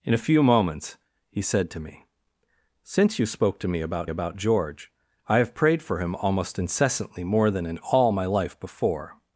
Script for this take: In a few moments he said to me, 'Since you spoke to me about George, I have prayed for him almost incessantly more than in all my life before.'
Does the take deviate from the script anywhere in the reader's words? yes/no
yes